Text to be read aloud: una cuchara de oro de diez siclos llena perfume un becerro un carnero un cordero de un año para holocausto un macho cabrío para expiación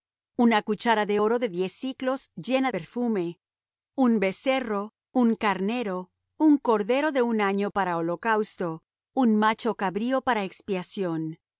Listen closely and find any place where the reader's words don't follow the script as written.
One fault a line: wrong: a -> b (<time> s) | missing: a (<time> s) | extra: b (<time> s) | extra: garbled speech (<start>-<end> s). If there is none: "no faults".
no faults